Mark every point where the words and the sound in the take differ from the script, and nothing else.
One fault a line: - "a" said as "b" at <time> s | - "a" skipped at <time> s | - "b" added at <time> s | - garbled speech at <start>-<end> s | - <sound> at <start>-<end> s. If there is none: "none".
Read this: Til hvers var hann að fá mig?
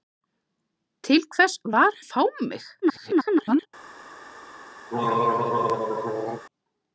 - "hann" skipped at 2.0 s
- garbled speech at 2.8-3.7 s
- throat clearing at 4.9-6.5 s